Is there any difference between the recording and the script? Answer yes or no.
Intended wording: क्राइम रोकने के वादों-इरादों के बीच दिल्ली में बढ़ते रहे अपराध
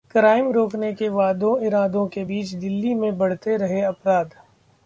no